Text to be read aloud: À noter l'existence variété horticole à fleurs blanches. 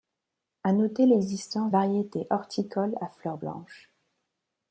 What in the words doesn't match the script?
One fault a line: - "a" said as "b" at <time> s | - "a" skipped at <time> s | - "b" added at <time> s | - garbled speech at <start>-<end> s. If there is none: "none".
none